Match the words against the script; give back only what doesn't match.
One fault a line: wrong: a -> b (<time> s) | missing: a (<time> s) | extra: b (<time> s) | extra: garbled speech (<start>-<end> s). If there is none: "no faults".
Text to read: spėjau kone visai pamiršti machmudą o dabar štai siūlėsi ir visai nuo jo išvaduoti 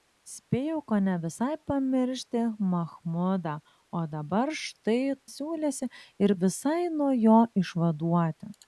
no faults